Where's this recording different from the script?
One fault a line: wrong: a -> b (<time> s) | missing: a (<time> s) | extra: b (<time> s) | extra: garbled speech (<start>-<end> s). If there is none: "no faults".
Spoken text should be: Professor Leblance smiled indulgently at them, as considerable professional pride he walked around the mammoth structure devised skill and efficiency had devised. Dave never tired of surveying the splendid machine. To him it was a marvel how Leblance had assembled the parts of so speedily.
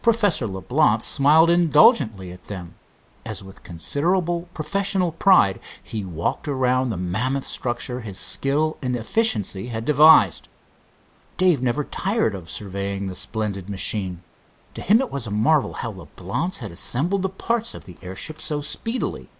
extra: with (3.4 s)
wrong: devised -> his (8.0 s)
extra: the airship (17.9 s)